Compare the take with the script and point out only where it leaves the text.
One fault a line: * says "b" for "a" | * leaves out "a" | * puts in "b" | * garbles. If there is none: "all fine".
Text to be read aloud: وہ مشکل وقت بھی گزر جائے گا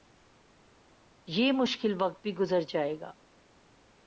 * says "یہ" for "وہ"